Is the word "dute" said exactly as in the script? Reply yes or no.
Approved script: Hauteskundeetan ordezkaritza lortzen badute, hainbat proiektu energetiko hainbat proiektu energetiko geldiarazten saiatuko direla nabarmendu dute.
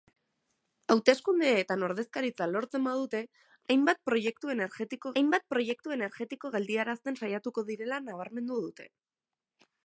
yes